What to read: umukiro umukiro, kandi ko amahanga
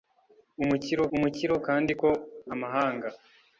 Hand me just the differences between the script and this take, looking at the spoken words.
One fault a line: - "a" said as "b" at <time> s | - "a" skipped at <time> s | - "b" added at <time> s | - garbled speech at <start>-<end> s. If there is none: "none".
none